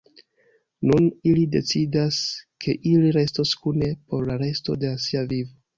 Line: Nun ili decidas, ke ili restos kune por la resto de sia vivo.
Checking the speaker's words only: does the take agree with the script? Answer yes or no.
yes